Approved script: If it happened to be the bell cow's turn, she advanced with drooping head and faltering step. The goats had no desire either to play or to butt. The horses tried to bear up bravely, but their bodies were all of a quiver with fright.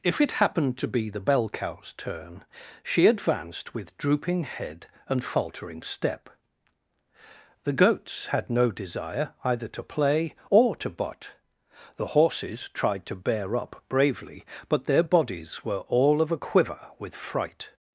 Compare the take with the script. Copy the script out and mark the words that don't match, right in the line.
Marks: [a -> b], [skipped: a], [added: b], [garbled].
If it happened to be the bell cow's turn, she advanced with drooping head and faltering step. The goats had no desire either to play or to butt. The horses tried to bear up bravely, but their bodies were all of a quiver with fright.